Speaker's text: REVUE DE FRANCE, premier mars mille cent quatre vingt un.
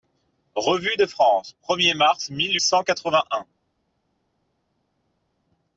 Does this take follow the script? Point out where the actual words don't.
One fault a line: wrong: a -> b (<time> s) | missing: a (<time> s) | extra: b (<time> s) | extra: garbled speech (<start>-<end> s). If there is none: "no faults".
no faults